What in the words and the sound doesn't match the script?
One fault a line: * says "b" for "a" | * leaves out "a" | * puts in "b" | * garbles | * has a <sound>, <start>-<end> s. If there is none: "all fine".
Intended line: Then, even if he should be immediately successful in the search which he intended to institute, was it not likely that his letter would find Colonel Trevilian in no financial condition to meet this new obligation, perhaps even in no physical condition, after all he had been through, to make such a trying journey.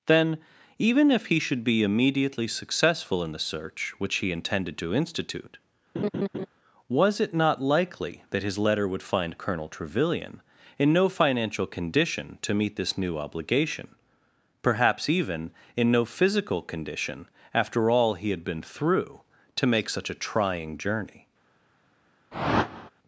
* has a laugh, 5.9-6.5 s
* has a whoosh, 22.3-22.9 s